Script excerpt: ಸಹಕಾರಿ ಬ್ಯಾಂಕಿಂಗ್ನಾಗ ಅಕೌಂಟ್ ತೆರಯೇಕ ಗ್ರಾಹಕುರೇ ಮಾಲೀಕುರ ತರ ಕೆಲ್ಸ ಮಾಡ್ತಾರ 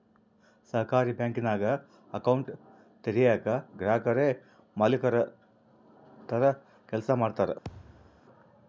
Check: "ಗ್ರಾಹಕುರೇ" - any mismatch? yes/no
no